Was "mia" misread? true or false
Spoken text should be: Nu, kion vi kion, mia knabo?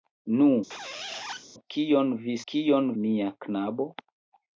false